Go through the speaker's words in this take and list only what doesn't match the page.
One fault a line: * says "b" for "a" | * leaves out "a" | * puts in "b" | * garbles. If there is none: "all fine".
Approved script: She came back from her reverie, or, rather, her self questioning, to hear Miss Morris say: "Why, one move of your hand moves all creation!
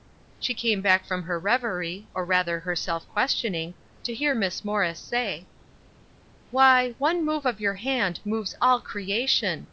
all fine